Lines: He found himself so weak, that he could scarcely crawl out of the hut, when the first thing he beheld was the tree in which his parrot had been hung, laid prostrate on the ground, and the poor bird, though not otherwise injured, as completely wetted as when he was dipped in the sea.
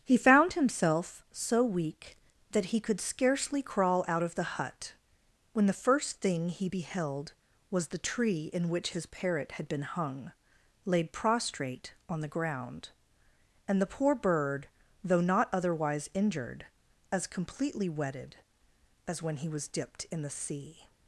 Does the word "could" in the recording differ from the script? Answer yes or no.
no